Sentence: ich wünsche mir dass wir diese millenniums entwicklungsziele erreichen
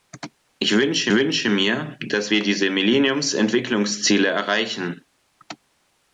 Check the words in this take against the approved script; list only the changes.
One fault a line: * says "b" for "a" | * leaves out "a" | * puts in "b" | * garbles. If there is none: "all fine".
* puts in "wünsche"